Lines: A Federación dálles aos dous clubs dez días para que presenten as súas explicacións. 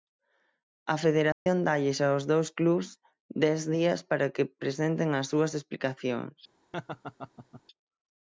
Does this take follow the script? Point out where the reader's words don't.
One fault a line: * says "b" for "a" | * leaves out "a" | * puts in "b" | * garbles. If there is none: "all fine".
all fine